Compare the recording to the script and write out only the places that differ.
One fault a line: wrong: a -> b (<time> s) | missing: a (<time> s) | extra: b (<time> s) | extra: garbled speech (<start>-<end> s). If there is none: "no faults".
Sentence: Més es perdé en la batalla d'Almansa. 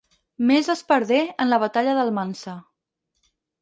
no faults